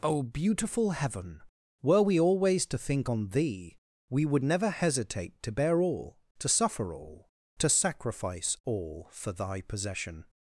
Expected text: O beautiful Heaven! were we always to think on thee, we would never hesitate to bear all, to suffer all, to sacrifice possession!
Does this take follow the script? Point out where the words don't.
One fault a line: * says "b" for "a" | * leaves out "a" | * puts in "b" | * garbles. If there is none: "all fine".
* puts in "all for thy"